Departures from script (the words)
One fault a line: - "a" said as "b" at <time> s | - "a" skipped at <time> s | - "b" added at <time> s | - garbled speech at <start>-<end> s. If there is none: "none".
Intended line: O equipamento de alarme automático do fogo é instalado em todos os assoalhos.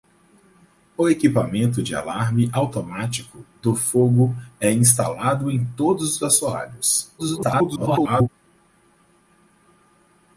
- garbled speech at 7.2-8.3 s